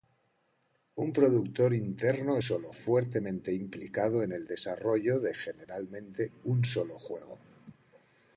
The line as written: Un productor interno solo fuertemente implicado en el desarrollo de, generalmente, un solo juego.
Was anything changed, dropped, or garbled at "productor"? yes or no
no